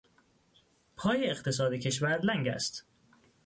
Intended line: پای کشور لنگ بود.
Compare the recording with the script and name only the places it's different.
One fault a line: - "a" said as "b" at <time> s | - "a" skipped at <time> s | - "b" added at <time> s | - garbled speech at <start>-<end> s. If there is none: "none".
- "اقتصاد" added at 1.3 s
- "بود" said as "است" at 2.5 s